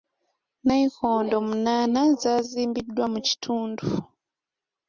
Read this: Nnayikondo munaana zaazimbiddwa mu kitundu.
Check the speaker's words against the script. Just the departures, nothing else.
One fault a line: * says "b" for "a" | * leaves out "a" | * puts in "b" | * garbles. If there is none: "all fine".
all fine